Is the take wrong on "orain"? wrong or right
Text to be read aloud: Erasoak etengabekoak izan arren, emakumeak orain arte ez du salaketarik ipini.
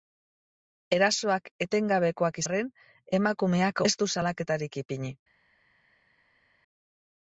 wrong